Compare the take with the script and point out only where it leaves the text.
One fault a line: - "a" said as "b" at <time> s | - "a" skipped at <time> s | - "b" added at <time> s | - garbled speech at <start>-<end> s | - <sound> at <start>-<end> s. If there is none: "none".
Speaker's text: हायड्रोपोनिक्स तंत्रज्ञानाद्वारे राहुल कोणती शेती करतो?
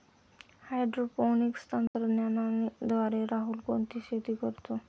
- dropout at 1.9-1.9 s